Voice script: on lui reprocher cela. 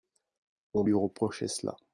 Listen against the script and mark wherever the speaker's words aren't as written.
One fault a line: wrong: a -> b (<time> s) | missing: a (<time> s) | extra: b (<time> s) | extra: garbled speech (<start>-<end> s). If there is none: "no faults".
no faults